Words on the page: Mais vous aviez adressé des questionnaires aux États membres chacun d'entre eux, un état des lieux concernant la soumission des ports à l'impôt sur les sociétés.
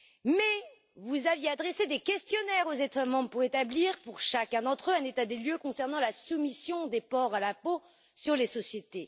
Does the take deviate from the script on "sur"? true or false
false